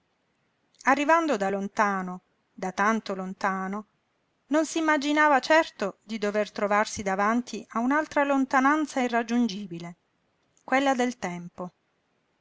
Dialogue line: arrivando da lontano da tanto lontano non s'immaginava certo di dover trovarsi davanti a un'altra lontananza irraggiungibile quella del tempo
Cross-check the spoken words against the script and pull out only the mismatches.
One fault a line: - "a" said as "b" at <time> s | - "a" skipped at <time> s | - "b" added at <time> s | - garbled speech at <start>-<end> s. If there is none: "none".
none